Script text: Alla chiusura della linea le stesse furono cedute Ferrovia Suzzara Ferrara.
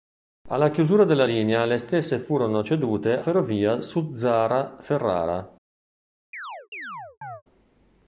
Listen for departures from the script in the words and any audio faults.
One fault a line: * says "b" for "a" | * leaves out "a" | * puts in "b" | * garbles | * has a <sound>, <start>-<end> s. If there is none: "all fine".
* has a chirp, 6.3-7.4 s